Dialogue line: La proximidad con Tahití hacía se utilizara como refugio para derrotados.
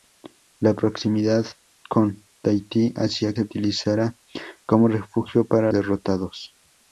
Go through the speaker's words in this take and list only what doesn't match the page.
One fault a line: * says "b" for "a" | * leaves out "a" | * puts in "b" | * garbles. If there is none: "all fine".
all fine